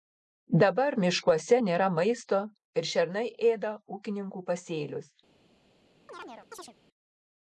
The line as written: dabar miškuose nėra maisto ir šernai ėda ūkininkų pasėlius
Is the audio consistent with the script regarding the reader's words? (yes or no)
yes